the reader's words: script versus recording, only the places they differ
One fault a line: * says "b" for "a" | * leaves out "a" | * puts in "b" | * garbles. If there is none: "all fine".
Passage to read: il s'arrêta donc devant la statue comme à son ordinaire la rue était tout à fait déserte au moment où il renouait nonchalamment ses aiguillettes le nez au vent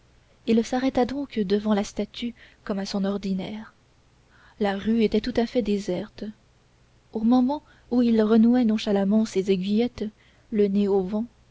all fine